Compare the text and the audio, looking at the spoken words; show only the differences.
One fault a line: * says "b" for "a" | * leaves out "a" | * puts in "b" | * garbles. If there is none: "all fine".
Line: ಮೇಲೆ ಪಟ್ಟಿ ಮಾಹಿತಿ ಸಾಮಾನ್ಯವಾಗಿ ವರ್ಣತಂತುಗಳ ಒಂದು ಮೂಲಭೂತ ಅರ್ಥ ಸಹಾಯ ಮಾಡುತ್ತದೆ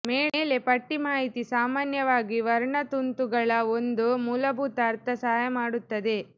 all fine